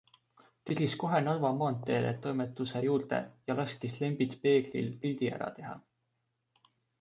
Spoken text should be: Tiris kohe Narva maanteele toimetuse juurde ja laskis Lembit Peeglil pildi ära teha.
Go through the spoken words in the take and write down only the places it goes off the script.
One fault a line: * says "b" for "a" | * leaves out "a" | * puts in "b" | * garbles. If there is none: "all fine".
all fine